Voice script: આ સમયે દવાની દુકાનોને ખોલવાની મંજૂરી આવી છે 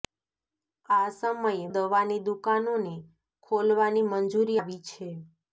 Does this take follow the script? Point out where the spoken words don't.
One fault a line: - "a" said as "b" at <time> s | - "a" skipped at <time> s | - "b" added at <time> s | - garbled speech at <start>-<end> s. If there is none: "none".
none